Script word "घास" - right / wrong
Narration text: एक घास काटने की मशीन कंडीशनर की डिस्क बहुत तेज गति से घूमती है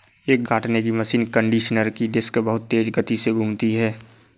wrong